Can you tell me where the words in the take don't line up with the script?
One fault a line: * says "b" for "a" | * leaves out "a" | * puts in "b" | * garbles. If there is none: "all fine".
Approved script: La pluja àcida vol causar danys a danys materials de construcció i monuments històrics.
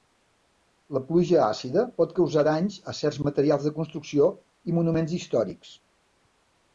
* says "pot" for "vol"
* says "certs" for "danys"